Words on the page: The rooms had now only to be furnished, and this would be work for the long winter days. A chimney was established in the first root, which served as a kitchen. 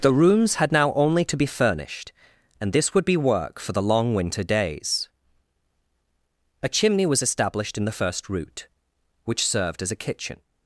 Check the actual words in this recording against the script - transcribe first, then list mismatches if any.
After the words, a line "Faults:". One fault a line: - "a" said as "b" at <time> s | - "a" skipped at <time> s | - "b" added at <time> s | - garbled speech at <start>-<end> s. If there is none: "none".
The rooms had now only to be furnished, and this would be work for the long winter days. A chimney was established in the first root, which served as a kitchen.
Faults:
none